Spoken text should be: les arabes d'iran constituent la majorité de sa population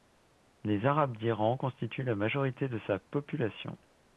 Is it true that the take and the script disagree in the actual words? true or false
false